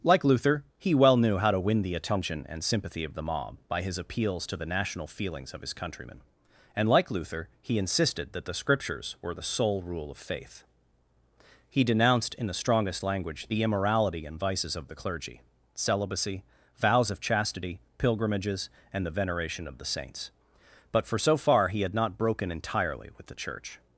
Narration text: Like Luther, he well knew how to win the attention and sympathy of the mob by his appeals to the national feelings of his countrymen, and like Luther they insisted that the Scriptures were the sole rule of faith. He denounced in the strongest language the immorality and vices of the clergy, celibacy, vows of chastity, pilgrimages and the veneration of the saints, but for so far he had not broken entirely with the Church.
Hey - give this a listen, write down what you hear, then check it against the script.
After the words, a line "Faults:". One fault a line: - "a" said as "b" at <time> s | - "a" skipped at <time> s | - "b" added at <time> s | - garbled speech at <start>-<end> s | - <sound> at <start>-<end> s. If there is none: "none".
Like Luther, he well knew how to win the attention and sympathy of the mob by his appeals to the national feelings of his countrymen, and like Luther he insisted that the Scriptures were the sole rule of faith. He denounced in the strongest language the immorality and vices of the clergy, celibacy, vows of chastity, pilgrimages and the veneration of the saints, but for so far he had not broken entirely with the Church.
Faults:
- "they" said as "he" at 7.6 s